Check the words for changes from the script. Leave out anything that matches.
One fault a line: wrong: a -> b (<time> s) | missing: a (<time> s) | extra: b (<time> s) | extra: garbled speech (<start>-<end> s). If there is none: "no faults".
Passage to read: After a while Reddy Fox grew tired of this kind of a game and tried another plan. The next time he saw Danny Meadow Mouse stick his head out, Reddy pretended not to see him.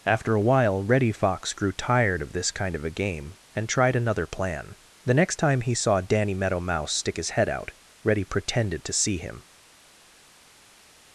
missing: not (8.8 s)